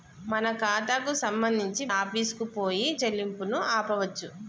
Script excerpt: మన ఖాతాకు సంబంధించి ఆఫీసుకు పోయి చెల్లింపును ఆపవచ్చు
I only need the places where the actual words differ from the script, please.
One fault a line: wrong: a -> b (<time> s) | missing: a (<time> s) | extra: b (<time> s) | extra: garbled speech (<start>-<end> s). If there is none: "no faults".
no faults